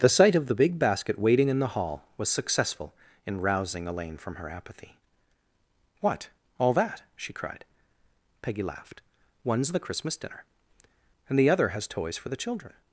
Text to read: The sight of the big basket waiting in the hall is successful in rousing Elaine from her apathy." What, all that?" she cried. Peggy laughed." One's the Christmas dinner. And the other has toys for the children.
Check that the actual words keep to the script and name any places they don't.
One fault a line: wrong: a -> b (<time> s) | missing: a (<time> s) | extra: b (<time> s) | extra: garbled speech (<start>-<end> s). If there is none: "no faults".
wrong: is -> was (2.2 s)